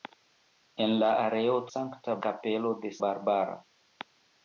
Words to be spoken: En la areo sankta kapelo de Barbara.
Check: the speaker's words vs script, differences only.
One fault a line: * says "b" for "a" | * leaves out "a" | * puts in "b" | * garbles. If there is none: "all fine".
all fine